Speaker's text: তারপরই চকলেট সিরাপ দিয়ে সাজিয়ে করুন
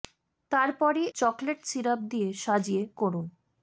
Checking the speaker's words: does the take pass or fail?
pass